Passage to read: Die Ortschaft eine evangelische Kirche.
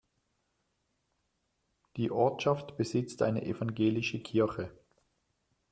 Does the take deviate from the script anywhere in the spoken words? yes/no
yes